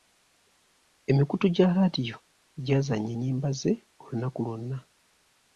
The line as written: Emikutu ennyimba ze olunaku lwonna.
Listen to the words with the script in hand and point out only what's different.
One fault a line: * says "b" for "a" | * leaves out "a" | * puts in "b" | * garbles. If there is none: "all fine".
* puts in "gya laadiyo gy'azannya"